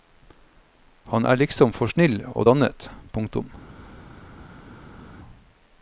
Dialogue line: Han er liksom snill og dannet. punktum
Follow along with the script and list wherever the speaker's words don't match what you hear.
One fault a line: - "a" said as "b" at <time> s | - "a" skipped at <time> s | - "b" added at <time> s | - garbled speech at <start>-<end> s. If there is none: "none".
- "for" added at 1.8 s